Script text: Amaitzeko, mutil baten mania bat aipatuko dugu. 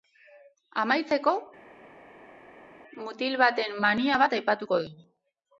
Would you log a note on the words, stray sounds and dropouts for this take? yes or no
no